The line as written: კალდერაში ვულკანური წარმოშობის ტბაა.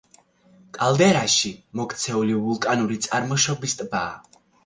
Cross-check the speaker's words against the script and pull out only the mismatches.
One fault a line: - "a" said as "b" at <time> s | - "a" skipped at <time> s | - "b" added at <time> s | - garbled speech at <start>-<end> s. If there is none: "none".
- "მოქცეული" added at 1.8 s